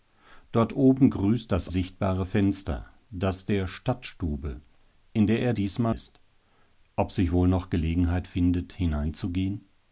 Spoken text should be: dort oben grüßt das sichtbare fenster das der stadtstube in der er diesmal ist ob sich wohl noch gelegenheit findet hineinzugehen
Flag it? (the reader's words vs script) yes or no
no